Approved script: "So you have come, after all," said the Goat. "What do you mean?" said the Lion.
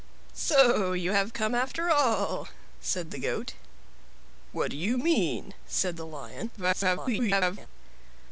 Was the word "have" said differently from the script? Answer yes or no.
no